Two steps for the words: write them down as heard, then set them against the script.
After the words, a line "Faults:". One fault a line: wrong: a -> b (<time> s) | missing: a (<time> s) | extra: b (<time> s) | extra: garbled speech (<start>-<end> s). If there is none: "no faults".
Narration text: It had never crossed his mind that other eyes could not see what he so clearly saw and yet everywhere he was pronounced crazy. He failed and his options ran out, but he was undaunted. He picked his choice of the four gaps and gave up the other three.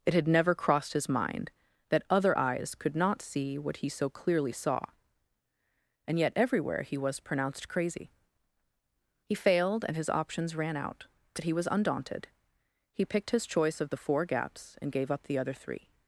It had never crossed his mind that other eyes could not see what he so clearly saw and yet everywhere he was pronounced crazy. He failed and his options ran out, but he was undaunted. He picked his choice of the four gaps and gave up the other three.
Faults:
no faults